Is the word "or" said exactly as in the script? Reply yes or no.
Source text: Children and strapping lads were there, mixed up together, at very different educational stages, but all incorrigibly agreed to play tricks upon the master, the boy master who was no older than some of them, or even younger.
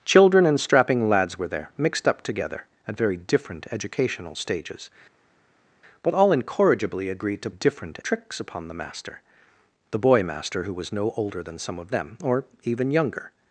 yes